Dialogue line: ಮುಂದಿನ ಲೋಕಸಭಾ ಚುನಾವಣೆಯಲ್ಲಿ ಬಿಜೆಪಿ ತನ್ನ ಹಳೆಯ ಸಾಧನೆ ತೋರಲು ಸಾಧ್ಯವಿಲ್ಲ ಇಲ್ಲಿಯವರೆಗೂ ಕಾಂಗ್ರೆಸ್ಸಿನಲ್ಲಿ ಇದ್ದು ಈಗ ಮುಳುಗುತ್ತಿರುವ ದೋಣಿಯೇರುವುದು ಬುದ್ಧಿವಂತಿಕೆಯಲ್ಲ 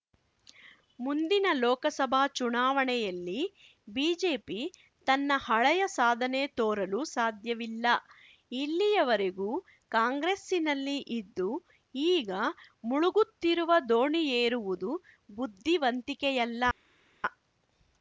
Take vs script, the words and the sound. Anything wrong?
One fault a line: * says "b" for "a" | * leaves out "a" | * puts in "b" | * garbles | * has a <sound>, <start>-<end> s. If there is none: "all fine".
all fine